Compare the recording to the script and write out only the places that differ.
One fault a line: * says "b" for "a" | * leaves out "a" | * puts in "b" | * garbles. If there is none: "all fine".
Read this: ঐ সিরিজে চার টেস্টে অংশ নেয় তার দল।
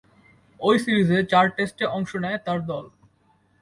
all fine